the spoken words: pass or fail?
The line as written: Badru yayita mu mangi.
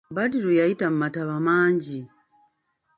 fail